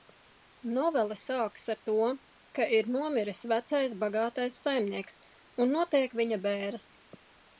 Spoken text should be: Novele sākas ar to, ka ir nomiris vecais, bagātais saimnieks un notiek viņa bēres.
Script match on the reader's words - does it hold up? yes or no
yes